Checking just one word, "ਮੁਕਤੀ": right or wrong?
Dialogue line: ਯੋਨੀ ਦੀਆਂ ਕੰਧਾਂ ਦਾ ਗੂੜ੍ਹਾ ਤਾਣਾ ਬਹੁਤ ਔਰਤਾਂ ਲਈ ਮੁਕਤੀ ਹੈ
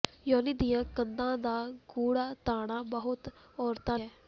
wrong